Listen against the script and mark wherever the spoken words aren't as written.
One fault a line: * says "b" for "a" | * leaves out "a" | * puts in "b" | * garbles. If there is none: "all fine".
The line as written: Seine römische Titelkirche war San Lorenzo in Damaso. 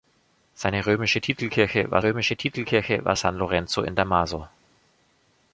* puts in "römische Titelkirche war"